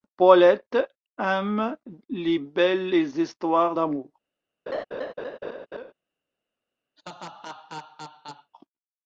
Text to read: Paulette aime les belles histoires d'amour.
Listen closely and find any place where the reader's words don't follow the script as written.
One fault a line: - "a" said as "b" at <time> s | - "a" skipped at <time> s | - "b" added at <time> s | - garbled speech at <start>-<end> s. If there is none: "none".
none